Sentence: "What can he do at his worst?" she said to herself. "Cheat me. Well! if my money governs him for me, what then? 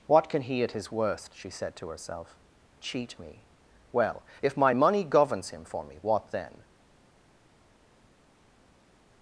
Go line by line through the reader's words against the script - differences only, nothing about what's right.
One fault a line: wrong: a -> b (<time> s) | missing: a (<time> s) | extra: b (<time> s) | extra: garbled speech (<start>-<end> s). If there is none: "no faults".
missing: do (0.6 s)